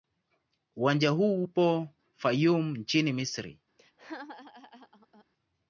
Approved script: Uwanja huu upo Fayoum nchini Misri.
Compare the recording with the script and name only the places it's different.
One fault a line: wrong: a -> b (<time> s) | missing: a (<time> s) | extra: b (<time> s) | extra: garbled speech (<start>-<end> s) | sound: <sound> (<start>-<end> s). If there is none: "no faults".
sound: laugh (3.8-5.2 s)